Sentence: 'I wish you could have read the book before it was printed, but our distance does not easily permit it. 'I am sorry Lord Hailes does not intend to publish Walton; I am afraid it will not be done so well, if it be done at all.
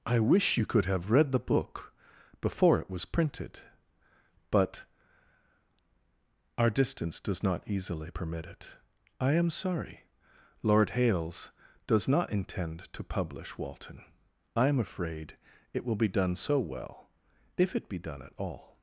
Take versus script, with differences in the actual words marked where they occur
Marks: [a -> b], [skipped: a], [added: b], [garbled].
'I wish you could have read the book before it was printed, but our distance does not easily permit it. 'I am sorry Lord Hailes does not intend to publish Walton; I am afraid it will [skipped: not] be done so well, if it be done at all.